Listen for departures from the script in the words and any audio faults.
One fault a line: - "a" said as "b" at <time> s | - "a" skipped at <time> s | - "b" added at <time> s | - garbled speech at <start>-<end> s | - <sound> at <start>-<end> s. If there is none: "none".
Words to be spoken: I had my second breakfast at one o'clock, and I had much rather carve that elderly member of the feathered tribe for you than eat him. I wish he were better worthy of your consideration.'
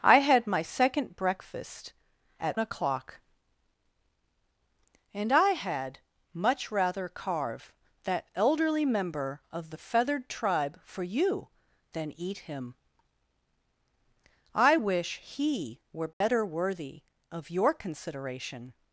- "one" skipped at 2.6 s
- dropout at 16.1-16.2 s